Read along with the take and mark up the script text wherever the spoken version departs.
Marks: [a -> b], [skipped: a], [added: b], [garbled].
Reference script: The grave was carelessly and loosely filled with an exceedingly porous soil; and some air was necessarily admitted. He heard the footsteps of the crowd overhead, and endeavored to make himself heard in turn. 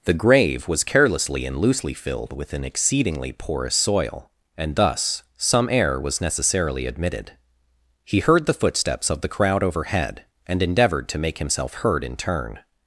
The grave was carelessly and loosely filled with an exceedingly porous soil; and [added: thus] some air was necessarily admitted. He heard the footsteps of the crowd overhead, and endeavored to make himself heard in turn.